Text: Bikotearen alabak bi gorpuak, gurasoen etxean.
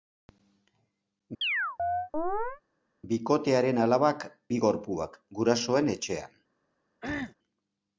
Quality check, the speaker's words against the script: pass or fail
pass